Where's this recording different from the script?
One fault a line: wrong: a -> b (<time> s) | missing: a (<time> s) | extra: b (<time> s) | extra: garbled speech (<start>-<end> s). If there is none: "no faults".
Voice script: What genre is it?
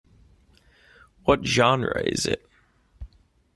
no faults